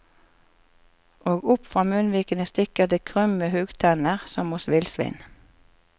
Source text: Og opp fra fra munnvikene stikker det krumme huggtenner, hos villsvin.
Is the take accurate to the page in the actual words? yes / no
no